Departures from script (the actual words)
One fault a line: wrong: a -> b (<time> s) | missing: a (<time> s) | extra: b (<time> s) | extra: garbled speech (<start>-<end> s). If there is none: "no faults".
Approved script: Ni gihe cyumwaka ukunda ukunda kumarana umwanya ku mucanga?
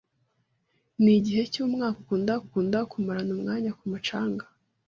no faults